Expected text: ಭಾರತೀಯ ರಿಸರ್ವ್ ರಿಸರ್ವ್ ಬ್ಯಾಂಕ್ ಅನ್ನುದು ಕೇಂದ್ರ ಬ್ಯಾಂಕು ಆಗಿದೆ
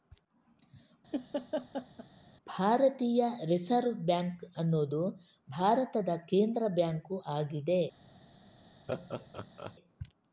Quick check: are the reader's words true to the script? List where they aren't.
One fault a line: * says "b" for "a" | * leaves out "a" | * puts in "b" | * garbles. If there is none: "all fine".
* leaves out "ರಿಸರ್ವ್"
* puts in "ಭಾರತದ"